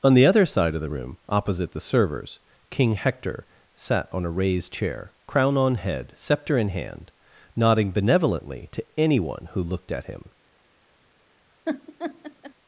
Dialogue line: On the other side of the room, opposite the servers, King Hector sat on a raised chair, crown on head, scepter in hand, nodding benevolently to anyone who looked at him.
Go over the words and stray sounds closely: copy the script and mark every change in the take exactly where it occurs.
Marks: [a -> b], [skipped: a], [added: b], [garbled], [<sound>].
On the other side of the room, opposite the servers, King Hector sat on a raised chair, crown on head, scepter in hand, nodding benevolently to anyone who looked at him. [laugh]